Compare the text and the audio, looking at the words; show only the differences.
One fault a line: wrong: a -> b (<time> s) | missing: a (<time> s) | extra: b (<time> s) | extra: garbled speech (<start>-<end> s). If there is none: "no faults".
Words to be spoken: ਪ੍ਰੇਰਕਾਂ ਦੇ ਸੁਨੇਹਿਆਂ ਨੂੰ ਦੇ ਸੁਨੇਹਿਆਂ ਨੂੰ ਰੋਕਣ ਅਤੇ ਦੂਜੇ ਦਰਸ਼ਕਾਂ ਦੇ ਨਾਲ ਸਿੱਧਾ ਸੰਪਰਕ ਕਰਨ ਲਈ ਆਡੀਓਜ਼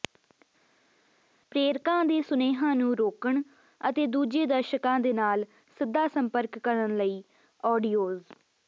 missing: ਦੇ ਸੁਨੇਹਿਆਂ ਨੂੰ (2.9 s)